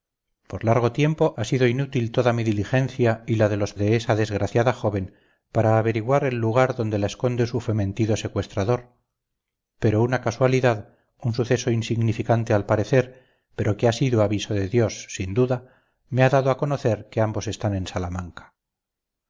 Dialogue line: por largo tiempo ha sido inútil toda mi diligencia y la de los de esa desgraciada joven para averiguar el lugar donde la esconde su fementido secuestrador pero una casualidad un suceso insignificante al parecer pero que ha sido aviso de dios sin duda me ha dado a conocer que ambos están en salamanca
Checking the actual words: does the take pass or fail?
pass